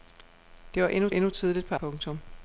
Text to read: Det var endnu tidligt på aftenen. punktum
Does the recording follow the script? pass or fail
fail